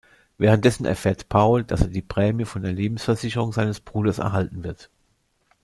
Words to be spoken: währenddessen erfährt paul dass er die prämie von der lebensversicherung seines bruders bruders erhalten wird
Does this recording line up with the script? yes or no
no